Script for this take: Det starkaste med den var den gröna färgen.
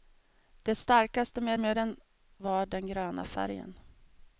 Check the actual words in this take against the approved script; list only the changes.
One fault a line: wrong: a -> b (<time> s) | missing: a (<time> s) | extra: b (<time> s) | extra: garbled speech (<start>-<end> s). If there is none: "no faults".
extra: med (1.6 s)